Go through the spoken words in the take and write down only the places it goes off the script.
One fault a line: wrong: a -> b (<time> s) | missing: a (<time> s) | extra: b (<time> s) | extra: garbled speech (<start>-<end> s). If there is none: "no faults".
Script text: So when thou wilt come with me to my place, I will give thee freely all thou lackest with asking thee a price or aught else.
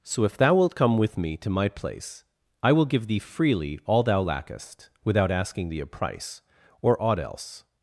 wrong: when -> if (0.2 s)
wrong: with -> without (5.0 s)